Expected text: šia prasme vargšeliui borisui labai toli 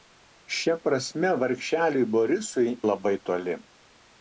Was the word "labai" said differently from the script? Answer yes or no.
no